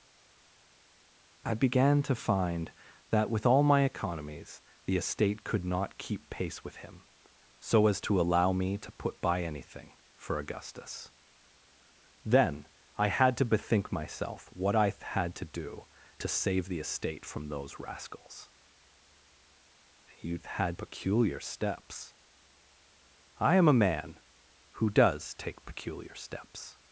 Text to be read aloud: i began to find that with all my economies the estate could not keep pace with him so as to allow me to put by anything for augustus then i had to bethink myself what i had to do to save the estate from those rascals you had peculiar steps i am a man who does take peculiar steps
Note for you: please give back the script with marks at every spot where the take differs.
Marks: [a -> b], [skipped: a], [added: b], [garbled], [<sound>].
i began to find that with all my economies the estate could not keep pace with him so as to allow me to put by anything for augustus then i had to bethink myself what i had to do to save the estate from those rascals you had peculiar steps i am a man who does take peculiar steps